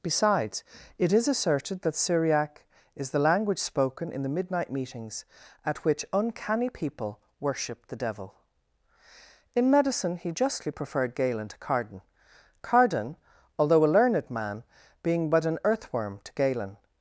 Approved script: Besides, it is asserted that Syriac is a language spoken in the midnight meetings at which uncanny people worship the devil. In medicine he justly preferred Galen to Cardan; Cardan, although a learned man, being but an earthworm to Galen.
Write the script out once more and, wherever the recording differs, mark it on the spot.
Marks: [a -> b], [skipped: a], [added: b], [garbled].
Besides, it is asserted that Syriac is [a -> the] language spoken in the midnight meetings at which uncanny people worship the devil. In medicine he justly preferred Galen to Cardan; Cardan, although a learned man, being but an earthworm to Galen.